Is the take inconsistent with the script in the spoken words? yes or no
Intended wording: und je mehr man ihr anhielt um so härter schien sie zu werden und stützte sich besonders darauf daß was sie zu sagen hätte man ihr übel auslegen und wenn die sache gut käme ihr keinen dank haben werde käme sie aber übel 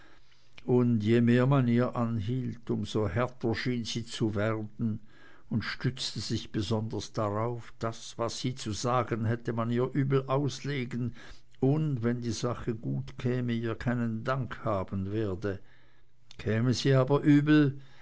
no